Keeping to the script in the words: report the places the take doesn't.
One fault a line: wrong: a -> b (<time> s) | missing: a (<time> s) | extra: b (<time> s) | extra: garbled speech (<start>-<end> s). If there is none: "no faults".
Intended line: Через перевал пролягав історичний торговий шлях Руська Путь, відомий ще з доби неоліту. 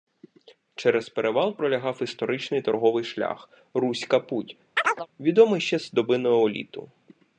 no faults